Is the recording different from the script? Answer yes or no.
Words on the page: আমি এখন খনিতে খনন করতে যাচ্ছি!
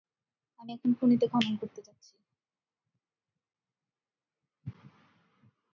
no